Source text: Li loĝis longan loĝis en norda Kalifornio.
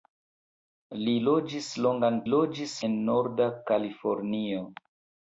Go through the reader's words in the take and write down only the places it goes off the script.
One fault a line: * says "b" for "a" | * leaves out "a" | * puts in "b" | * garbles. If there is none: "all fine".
all fine